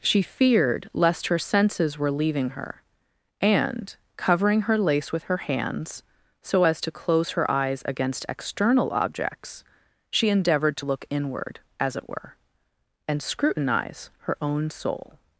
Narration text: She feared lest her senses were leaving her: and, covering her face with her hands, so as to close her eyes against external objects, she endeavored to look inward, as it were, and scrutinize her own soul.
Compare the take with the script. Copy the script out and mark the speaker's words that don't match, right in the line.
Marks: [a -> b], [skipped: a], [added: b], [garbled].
She feared lest her senses were leaving her: and, covering her [face -> lace] with her hands, so as to close her eyes against external objects, she endeavored to look inward, as it were, and scrutinize her own soul.